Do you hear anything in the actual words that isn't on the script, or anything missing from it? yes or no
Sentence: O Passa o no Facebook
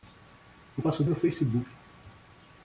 no